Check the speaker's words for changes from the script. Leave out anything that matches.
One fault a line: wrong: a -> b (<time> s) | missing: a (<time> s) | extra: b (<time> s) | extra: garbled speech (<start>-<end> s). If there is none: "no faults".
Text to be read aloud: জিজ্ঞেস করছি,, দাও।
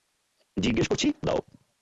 no faults